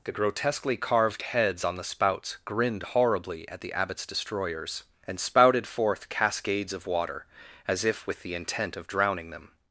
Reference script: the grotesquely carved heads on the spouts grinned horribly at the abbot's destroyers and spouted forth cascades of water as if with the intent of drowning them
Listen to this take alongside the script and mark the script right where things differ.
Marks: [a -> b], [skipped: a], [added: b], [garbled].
the grotesquely carved heads on the spouts grinned horribly at the abbot's destroyers and spouted forth cascades of water as if with the intent of drowning them